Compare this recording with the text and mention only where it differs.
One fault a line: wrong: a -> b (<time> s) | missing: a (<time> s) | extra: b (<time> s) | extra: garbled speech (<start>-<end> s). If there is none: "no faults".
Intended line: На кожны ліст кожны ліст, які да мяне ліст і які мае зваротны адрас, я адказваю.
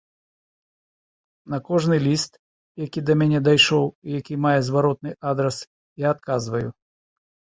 missing: кожны ліст (2.3 s)
wrong: ліст -> дайшоў (3.5 s)